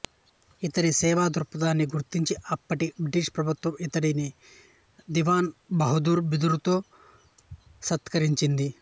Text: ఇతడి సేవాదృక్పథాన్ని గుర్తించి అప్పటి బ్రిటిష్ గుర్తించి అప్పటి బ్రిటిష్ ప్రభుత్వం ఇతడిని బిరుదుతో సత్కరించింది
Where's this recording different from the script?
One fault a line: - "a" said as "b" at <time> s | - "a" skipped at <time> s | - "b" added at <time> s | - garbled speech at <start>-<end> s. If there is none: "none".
- "గుర్తించి అప్పటి బ్రిటిష్ ప్రభుత్వం ఇతడిని" said as "ప్రభుత్వం ఇతడిని దివాన్ బహదూర్" at 3.4 s